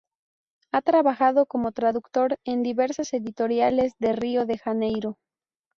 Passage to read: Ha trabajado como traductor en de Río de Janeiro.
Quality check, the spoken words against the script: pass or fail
fail